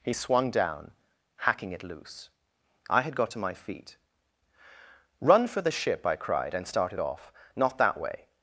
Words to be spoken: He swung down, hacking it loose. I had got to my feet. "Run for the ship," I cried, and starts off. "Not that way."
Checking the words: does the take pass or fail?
fail